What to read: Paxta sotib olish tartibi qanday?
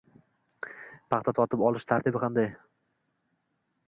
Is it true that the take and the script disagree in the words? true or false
false